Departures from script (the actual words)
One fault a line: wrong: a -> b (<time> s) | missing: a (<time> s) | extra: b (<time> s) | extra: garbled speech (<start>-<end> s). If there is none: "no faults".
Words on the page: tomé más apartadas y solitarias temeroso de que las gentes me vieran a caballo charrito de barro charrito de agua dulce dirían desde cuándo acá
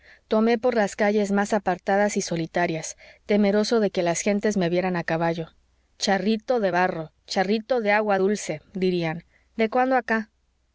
extra: por las calles (0.6 s)
wrong: desde -> de (9.6 s)